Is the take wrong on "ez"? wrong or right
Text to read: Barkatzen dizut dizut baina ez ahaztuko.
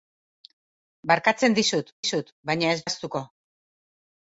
right